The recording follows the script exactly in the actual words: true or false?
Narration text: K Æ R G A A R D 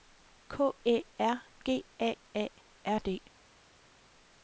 true